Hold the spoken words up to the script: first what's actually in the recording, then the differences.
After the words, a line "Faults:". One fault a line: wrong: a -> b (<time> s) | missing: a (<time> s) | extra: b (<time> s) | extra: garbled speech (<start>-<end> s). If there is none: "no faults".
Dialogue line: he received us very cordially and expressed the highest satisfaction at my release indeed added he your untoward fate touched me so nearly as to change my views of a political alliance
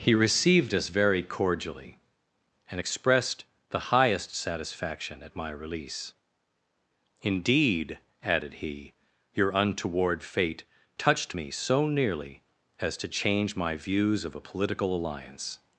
he received us very cordially and expressed the highest satisfaction at my release indeed added he your untoward fate touched me so nearly as to change my views of a political alliance
Faults:
no faults